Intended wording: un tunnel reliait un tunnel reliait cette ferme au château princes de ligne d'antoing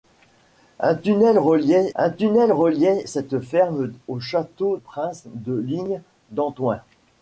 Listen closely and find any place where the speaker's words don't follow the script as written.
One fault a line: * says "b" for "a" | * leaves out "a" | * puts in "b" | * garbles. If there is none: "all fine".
all fine